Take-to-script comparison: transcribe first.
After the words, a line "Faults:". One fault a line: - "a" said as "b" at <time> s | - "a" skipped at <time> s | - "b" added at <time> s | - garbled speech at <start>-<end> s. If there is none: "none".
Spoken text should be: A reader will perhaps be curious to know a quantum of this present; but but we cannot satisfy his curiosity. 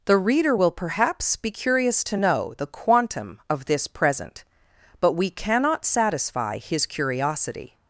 The reader will perhaps be curious to know the quantum of this present; but we cannot satisfy his curiosity.
Faults:
- "A" said as "The" at 0.1 s
- "a" said as "the" at 2.6 s
- "but" skipped at 5.1 s